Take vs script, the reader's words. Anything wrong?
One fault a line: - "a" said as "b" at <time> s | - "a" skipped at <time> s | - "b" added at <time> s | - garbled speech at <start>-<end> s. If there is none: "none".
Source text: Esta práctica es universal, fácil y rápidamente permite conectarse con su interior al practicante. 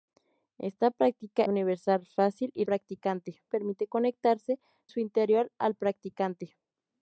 - "es" skipped at 1.4 s
- "rápidamente" said as "practicante" at 2.6 s
- "con" skipped at 4.6 s